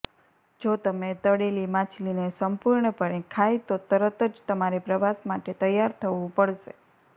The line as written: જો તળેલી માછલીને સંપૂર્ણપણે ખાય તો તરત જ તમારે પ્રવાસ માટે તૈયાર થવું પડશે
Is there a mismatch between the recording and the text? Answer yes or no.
yes